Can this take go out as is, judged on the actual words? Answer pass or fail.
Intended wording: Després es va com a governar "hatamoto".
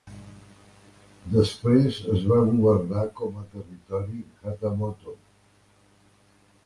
fail